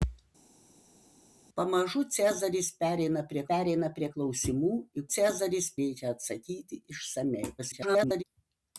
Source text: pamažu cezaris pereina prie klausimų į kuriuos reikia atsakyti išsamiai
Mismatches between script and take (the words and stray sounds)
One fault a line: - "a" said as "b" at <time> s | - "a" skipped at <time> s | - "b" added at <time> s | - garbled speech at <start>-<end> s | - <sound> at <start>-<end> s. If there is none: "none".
- "pereina prie" added at 3.5 s
- "kuriuos" said as "cezaris" at 5.2 s
- garbled speech at 7.6-8.2 s